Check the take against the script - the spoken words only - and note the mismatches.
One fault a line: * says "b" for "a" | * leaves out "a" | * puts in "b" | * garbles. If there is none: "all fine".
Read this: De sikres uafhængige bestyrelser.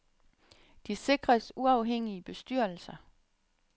all fine